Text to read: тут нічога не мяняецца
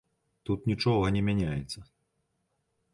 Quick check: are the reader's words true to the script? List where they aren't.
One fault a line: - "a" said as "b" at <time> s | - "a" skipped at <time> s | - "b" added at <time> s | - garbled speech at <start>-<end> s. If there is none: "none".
none